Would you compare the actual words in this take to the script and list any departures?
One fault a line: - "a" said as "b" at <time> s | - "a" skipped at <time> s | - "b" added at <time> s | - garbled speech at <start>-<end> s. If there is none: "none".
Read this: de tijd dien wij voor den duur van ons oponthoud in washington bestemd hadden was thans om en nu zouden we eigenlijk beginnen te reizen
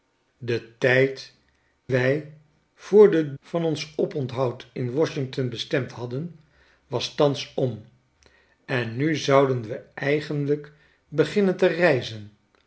- "dien" skipped at 1.3 s
- "duur" skipped at 3.4 s